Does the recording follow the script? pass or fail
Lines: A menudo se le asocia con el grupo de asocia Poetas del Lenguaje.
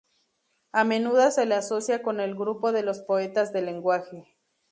fail